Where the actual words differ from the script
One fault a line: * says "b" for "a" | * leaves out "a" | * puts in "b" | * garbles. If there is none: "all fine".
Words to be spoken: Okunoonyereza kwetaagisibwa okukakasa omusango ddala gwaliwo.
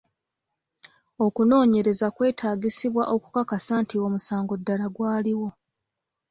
* puts in "nti"